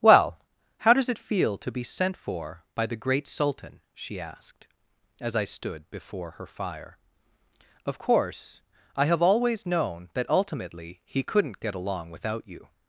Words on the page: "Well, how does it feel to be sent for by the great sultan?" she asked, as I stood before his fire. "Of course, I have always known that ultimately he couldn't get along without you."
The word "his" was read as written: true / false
false